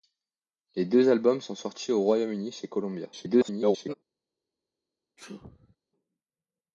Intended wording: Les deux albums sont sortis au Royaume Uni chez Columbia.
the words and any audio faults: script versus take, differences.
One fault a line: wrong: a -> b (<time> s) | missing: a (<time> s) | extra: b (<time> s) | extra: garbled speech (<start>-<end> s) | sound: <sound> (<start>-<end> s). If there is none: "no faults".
extra: garbled speech (3.1-3.9 s)
sound: sneeze (5.2-5.8 s)